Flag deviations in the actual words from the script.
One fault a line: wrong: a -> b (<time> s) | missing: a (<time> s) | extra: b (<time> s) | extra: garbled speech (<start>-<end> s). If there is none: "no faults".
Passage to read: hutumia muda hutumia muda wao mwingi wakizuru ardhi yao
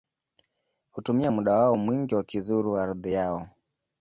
missing: hutumia muda (1.6 s)